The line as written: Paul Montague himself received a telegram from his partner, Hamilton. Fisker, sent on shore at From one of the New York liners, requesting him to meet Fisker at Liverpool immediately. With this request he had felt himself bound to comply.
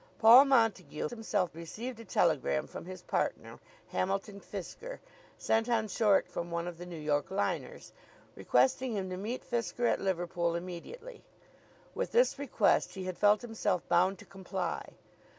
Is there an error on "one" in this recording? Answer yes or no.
no